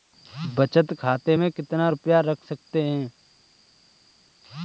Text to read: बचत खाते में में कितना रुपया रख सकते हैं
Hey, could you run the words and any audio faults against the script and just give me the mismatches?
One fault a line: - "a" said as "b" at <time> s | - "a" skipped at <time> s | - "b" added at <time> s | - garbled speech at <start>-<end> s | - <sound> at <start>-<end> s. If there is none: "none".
- "में" skipped at 1.5 s